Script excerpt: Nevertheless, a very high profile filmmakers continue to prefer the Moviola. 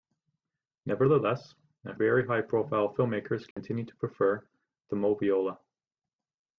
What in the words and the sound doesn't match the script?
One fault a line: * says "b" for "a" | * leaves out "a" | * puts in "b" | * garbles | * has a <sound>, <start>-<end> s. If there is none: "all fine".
* has a dropout, 3.5-3.6 s